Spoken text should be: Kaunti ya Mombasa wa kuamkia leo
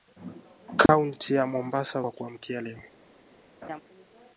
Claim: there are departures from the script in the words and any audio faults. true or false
true